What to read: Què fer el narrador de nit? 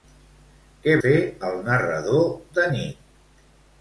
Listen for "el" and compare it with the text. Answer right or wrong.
right